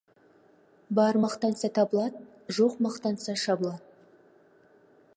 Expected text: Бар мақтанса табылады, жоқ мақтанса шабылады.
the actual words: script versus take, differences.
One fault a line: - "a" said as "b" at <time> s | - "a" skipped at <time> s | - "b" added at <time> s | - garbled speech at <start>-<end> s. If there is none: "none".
none